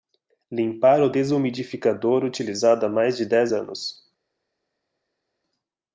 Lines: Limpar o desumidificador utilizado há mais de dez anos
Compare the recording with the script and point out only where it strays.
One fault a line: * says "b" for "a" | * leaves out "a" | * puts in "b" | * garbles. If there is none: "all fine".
all fine